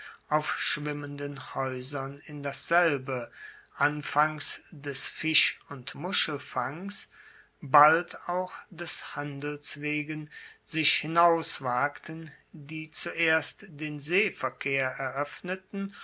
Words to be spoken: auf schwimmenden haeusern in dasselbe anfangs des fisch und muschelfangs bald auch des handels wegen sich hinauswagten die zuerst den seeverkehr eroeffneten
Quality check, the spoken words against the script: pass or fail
pass